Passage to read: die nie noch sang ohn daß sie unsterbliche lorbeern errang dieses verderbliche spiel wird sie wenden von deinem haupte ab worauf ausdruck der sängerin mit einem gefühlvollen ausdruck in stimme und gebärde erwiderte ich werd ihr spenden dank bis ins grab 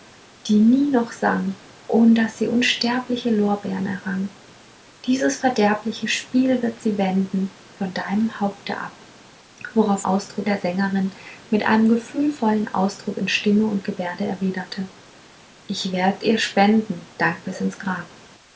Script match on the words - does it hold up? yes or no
yes